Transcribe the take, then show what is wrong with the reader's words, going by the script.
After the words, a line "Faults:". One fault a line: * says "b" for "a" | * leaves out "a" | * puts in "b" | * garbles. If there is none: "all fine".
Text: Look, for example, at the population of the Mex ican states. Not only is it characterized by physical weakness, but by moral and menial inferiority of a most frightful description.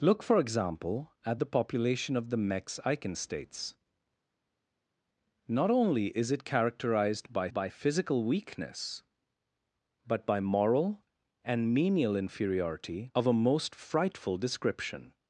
Look, for example, at the population of the Mex ican states. Not only is it characterized by by physical weakness, but by moral and menial inferiority of a most frightful description.
Faults:
* puts in "by"